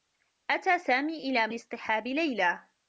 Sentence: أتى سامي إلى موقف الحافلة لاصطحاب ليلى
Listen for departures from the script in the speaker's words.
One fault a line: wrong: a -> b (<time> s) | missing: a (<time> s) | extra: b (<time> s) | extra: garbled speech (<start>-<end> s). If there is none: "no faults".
missing: موقف الحافلة (1.5 s)